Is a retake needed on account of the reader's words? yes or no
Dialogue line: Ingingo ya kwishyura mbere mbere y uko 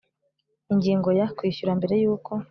yes